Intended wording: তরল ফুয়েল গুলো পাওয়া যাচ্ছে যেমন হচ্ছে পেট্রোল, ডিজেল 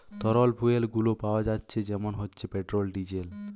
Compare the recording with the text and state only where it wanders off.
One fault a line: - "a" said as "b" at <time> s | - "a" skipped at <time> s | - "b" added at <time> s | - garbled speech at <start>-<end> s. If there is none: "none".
none